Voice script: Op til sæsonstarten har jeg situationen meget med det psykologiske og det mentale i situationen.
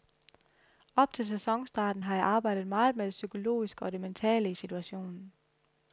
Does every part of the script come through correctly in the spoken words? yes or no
no